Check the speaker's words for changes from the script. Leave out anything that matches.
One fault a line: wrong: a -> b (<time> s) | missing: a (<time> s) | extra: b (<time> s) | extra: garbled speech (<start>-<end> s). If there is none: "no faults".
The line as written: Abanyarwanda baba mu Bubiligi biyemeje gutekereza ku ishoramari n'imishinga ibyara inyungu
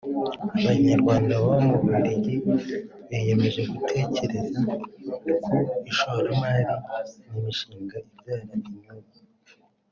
no faults